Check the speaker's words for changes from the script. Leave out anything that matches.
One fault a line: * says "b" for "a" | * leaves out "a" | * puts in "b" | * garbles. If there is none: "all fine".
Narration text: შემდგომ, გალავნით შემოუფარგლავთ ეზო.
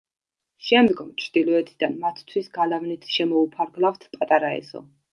* puts in "ჩრდილოეთიდან მათთვის"
* puts in "პატარა"